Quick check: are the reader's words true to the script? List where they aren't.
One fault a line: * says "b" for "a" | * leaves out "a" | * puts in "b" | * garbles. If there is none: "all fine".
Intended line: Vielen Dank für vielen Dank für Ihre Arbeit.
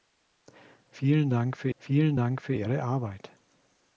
all fine